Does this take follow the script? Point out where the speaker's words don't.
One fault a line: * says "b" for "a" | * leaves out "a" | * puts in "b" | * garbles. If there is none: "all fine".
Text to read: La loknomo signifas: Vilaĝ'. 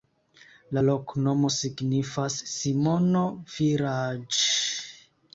* puts in "Simono"